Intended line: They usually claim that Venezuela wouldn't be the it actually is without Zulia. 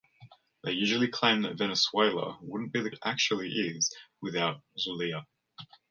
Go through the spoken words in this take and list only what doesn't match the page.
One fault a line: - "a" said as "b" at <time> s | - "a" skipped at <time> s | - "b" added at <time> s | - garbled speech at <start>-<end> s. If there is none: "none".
none